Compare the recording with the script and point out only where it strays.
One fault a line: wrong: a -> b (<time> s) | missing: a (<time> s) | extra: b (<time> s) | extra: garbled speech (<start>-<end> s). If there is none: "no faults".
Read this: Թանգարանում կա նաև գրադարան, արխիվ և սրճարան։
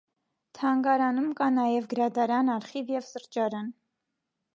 no faults